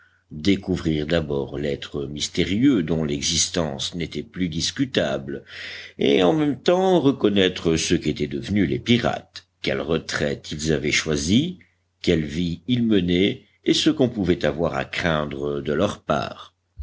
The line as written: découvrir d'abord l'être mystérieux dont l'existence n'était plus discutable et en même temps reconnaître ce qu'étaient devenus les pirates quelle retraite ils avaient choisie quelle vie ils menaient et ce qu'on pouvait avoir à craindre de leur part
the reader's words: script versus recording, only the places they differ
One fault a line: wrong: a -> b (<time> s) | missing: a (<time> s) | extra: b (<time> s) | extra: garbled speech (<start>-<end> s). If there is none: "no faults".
no faults